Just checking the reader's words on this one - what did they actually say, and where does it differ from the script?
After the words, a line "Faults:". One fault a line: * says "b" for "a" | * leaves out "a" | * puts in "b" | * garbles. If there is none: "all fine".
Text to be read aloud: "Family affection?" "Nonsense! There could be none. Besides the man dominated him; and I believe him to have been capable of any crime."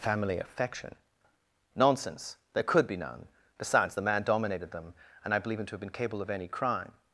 "Family affection?" "Nonsense! There could be none. Besides the man dominated them; and I believe him to have been capable of any crime."
Faults:
* says "them" for "him"